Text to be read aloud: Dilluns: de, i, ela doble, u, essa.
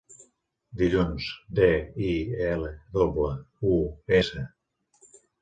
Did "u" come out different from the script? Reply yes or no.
no